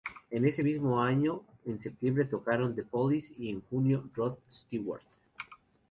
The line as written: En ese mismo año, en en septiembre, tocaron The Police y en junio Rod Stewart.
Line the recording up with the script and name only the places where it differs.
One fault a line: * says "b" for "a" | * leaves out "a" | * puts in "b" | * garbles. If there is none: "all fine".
* leaves out "en"